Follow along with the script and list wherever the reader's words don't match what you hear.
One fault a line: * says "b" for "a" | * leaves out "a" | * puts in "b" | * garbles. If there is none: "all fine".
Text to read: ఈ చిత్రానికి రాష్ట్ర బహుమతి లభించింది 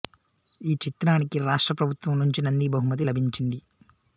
* puts in "ప్రభుత్వం నుంచి నంది"